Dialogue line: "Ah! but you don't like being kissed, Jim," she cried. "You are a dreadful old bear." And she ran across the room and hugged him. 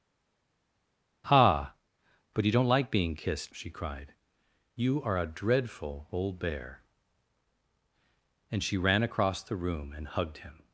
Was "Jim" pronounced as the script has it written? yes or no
no